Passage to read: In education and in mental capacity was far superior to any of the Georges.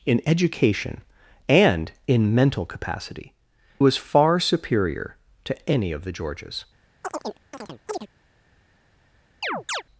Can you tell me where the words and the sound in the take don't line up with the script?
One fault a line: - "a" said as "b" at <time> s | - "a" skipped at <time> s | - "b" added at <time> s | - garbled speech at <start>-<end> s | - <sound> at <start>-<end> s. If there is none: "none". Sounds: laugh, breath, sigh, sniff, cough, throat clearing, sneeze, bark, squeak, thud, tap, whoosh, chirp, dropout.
- chirp at 7.0-8.1 s
- chirp at 9.4-9.8 s